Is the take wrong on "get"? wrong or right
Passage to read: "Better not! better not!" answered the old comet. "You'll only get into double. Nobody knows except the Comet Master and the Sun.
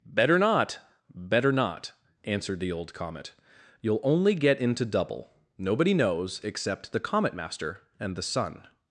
right